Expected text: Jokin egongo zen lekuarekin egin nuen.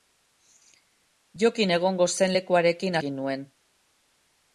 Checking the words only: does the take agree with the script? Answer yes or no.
yes